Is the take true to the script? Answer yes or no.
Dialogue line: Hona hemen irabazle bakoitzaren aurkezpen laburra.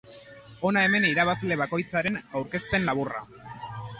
yes